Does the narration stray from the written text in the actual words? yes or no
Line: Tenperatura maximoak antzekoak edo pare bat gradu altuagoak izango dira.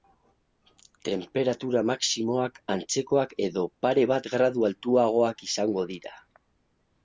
no